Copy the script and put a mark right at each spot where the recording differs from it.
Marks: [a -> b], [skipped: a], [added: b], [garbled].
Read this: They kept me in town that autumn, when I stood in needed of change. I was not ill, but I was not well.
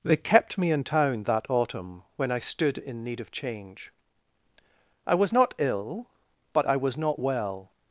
They kept me in town that autumn, when I stood in [needed -> need] of change. I was not ill, but I was not well.